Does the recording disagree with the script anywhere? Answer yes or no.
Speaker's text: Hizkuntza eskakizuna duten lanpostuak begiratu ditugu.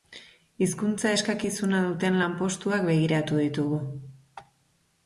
no